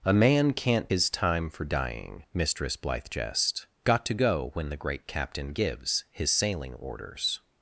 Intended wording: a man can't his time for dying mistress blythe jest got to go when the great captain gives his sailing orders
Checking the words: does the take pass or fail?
pass